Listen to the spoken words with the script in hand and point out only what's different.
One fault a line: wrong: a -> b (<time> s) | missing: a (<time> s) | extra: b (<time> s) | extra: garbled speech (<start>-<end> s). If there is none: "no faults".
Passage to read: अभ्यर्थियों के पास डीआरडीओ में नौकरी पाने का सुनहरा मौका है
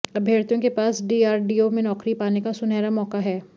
no faults